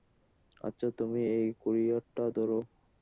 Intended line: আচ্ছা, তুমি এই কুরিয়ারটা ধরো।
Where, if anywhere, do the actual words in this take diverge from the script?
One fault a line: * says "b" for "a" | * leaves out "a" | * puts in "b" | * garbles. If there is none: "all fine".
all fine